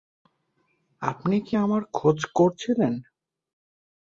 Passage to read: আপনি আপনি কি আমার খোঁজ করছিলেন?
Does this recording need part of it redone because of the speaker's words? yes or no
yes